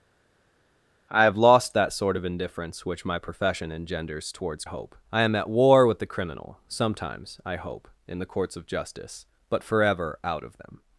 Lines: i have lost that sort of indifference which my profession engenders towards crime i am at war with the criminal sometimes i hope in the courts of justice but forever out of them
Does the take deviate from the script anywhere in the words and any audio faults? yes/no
yes